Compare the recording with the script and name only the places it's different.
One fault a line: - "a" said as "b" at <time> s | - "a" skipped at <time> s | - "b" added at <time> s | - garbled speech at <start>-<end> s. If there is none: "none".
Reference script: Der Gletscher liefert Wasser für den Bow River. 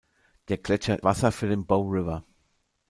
- "liefert" skipped at 1.0 s